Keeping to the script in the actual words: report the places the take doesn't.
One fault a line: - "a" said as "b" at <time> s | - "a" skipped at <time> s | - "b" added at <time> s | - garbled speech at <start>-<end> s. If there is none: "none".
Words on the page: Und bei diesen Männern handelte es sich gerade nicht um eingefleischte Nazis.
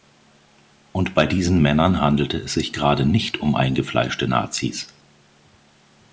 none